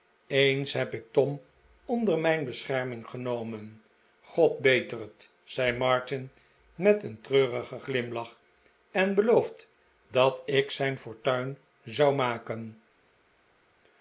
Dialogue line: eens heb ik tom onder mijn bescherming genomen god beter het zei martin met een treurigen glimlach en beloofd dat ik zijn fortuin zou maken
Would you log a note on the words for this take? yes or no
no